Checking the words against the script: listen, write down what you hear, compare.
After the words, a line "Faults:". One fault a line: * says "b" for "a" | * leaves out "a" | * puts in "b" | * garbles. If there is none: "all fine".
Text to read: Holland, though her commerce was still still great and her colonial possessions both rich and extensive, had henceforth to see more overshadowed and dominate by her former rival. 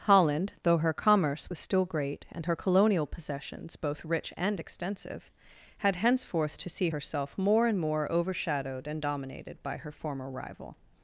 Holland, though her commerce was still great and her colonial possessions both rich and extensive, had henceforth to see herself more and more overshadowed and dominated by her former rival.
Faults:
* leaves out "still"
* puts in "herself"
* puts in "and more"
* says "dominated" for "dominate"